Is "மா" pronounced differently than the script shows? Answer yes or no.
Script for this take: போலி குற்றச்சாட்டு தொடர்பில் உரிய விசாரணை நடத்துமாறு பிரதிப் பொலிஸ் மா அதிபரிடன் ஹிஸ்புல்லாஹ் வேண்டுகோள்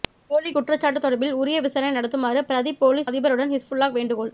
yes